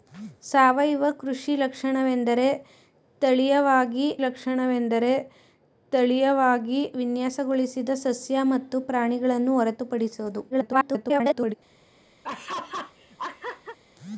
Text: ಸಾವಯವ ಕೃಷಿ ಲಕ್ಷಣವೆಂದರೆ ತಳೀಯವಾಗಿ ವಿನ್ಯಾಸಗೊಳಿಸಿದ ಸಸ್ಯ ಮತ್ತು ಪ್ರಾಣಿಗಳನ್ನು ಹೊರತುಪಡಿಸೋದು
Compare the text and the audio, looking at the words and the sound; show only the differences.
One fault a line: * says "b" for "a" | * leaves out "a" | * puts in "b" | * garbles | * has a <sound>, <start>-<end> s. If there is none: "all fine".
* puts in "ಲಕ್ಷಣವೆಂದರೆ ತಳೀಯವಾಗಿ"
* garbles
* has a laugh, 12.2-13.8 s